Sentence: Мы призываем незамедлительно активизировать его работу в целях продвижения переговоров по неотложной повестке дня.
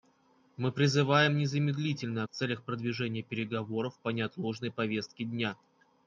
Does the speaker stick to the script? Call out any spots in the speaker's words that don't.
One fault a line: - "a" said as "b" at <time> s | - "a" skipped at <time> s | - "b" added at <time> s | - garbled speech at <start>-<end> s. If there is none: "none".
- "активизировать его работу" skipped at 2.2 s